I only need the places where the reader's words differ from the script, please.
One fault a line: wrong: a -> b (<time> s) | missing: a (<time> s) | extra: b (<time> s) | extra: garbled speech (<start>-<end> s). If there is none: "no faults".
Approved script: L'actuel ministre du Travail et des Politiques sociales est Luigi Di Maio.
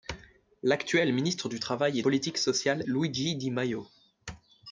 missing: des (2.0 s)
missing: est (2.8 s)